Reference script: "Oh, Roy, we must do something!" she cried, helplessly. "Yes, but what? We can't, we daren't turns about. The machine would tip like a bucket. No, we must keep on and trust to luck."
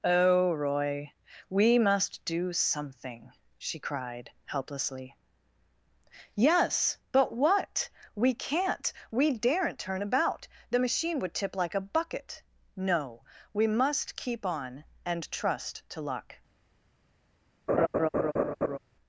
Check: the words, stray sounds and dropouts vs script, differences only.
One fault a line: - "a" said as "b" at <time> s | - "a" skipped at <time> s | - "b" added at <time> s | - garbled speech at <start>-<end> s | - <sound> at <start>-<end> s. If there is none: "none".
- "turns" said as "turn" at 9.8 s
- laugh at 17.7-18.8 s